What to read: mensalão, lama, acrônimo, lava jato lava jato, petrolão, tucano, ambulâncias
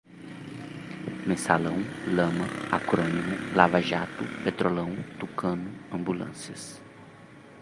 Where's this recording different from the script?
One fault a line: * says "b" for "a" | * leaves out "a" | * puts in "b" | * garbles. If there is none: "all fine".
* leaves out "lava jato"